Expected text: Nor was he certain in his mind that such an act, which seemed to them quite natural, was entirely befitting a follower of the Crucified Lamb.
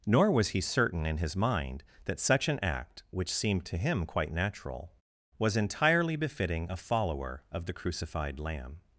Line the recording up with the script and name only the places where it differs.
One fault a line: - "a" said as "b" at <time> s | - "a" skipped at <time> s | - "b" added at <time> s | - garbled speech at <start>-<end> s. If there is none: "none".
- "them" said as "him" at 3.8 s